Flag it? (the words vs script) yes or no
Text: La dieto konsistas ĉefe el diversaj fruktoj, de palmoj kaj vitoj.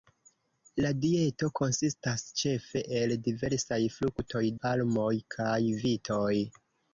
yes